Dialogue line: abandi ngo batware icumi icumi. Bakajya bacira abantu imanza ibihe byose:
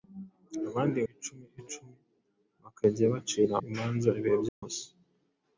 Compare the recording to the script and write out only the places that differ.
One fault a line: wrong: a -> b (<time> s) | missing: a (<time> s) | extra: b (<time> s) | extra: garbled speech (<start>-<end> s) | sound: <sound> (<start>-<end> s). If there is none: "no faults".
missing: ngo batware (1.0 s)
missing: abantu (3.5 s)
sound: dropout (4.5-4.6 s)